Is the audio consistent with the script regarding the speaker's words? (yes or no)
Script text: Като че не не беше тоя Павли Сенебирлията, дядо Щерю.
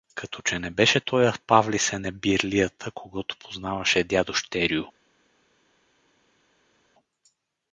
no